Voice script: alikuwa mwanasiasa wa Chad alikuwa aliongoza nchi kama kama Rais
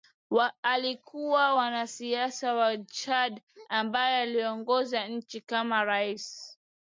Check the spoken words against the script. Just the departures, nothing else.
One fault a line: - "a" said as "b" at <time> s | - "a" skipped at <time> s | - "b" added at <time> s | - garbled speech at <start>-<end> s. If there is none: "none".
- "alikuwa" said as "ambaye" at 3.7 s
- "kama" skipped at 5.8 s